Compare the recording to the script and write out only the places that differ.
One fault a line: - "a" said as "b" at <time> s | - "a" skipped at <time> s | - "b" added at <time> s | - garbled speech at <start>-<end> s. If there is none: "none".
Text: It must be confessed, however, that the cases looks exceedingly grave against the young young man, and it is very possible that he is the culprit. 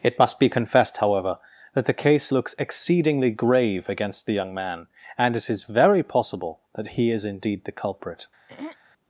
- "cases" said as "case" at 1.9 s
- "young" skipped at 4.5 s
- "indeed" added at 7.3 s